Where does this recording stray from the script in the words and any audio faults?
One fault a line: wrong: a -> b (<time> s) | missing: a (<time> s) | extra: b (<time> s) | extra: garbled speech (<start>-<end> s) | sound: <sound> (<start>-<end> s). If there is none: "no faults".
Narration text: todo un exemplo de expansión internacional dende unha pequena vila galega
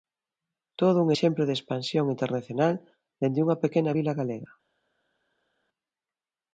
no faults